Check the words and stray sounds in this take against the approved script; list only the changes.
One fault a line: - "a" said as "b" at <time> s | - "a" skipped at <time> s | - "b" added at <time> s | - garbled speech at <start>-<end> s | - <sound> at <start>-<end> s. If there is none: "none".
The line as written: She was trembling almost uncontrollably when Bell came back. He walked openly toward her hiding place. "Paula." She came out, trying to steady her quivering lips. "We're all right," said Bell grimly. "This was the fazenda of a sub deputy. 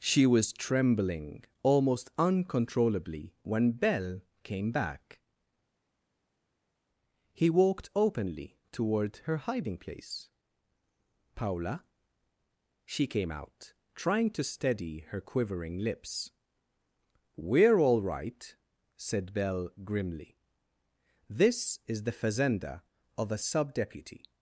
- "was" said as "is" at 21.9 s